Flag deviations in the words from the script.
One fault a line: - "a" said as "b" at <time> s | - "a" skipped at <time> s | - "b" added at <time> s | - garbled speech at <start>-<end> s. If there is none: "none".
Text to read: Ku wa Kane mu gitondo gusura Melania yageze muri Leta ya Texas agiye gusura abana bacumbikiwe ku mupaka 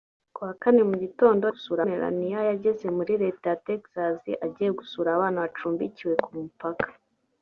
none